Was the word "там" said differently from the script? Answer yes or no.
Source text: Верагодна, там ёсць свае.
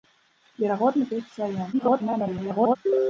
yes